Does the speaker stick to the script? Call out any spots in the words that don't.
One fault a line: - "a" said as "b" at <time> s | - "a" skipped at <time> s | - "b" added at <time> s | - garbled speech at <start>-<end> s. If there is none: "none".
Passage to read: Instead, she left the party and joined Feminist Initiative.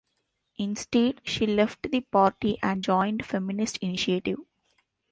none